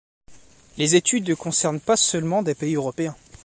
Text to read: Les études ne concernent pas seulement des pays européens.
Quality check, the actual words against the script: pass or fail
pass